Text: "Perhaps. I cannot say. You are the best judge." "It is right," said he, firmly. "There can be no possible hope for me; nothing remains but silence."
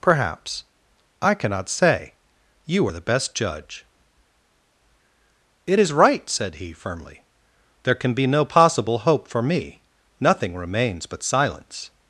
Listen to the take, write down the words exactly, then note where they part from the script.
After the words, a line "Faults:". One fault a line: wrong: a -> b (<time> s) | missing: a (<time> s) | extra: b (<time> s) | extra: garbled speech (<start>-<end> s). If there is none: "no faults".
"Perhaps. I cannot say. You are the best judge." "It is right," said he, firmly. "There can be no possible hope for me; nothing remains but silence."
Faults:
no faults